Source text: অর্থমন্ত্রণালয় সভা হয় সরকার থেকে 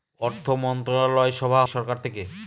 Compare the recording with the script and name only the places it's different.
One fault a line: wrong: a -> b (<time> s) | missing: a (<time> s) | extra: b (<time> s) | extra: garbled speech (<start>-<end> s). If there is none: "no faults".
missing: হয় (1.6 s)